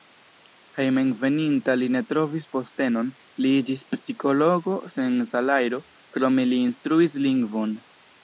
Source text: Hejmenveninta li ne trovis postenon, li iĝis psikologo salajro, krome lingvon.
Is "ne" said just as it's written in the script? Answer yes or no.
yes